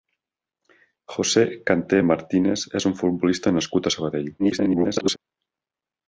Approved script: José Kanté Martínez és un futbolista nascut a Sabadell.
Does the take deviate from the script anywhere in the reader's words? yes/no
yes